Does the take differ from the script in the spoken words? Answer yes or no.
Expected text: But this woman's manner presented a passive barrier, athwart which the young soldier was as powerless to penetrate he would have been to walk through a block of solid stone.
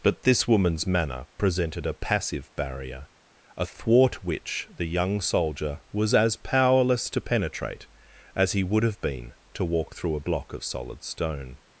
yes